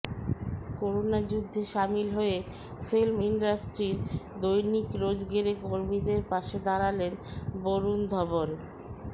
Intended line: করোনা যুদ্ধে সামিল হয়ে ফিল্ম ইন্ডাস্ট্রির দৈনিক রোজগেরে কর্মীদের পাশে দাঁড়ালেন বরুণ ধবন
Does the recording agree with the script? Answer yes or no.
yes